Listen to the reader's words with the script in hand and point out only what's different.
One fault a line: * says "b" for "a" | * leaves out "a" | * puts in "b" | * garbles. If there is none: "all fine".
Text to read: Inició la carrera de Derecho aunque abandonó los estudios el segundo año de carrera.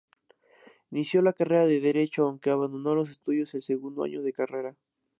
all fine